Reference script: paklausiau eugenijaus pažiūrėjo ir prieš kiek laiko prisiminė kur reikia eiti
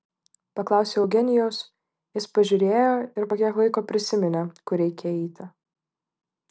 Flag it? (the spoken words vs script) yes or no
yes